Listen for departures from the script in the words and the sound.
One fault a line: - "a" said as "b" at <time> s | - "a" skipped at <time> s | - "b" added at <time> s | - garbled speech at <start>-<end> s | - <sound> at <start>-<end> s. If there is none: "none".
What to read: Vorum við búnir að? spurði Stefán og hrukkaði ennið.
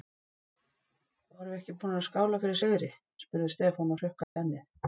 - "ekki" added at 1.6 s
- "skála fyrir sigri" added at 2.1 s
- dropout at 4.2-4.4 s